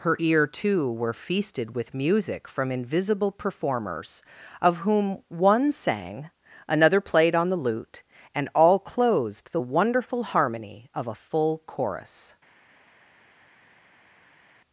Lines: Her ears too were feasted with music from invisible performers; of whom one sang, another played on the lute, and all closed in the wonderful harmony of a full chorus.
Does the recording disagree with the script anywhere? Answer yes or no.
yes